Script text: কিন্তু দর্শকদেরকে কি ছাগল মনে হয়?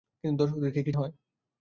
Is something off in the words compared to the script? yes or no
yes